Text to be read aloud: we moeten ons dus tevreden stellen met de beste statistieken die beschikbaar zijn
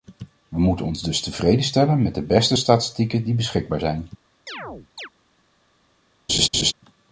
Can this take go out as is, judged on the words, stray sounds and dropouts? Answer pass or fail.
fail